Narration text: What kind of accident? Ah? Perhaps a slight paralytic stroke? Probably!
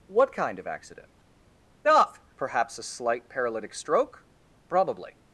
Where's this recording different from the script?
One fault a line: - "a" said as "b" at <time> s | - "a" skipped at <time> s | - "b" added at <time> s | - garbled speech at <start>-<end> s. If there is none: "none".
none